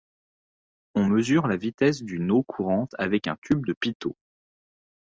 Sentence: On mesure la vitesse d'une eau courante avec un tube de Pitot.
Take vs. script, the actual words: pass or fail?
pass